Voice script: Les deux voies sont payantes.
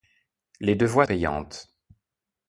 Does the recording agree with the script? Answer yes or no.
no